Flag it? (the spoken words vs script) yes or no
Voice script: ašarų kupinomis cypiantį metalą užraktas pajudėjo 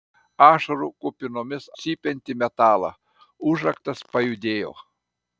no